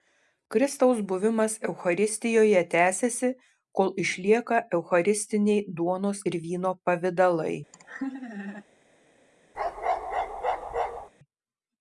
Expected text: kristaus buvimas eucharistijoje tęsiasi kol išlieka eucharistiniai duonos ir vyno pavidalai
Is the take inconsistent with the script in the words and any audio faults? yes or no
yes